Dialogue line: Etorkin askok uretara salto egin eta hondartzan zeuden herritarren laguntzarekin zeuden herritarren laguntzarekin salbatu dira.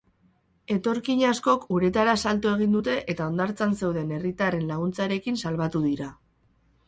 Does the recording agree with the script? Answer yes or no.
no